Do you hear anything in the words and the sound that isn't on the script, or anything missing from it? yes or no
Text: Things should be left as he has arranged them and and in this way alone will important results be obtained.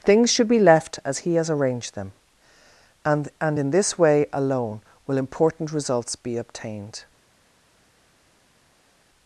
no